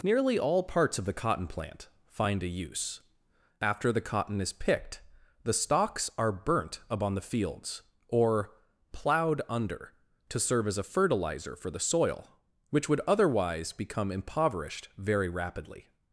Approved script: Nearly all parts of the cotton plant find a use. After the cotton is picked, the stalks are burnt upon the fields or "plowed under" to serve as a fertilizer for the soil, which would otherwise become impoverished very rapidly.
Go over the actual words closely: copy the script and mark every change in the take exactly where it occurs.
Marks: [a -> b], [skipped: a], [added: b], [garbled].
Nearly all parts of the cotton plant find a use. After the cotton is picked, the stalks are burnt upon the fields or "plowed under" to serve as a fertilizer for the soil, which would otherwise become impoverished very rapidly.